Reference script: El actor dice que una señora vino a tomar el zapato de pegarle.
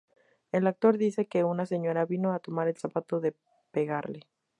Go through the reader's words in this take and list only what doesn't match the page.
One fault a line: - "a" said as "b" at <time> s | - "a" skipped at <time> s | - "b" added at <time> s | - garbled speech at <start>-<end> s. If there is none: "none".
none